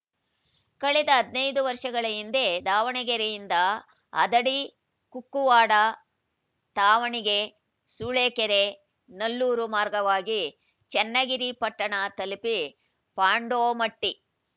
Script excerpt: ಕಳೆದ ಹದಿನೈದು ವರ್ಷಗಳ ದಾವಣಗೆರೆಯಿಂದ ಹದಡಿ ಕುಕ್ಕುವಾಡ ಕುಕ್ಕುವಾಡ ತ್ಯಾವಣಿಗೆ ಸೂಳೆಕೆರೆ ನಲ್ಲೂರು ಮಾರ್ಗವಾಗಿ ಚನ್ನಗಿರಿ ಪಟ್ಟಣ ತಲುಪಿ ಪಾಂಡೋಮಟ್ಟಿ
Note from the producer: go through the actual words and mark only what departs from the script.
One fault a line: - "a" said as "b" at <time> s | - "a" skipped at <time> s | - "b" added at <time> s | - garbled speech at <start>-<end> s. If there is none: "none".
- "ಹಿಂದೆ" added at 2.1 s
- "ಕುಕ್ಕುವಾಡ" skipped at 5.7 s